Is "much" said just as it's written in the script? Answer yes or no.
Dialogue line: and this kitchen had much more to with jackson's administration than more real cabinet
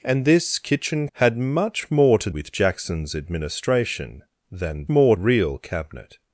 yes